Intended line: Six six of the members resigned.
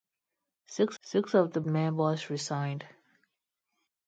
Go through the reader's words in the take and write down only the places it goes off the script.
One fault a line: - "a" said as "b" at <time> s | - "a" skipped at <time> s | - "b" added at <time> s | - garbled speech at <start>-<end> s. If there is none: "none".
none